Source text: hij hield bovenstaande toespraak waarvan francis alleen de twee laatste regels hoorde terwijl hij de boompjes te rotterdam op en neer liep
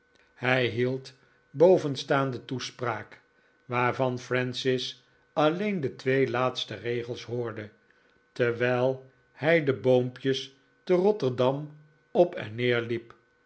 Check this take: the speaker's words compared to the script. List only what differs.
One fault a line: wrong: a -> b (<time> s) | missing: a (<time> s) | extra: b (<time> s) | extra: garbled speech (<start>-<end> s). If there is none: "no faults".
no faults